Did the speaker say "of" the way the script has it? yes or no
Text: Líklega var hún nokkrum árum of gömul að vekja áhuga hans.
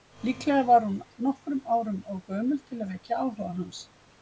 yes